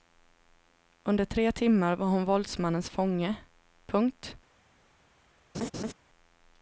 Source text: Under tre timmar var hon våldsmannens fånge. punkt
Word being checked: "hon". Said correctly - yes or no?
yes